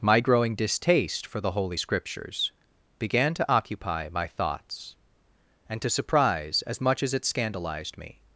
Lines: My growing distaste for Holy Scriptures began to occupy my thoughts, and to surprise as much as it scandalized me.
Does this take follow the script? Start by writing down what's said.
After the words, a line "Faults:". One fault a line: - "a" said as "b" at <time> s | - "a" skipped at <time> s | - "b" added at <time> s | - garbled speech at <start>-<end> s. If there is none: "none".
My growing distaste for the Holy Scriptures began to occupy my thoughts, and to surprise as much as it scandalized me.
Faults:
- "the" added at 1.4 s